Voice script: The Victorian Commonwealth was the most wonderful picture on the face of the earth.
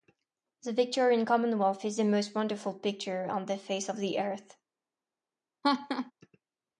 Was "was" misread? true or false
true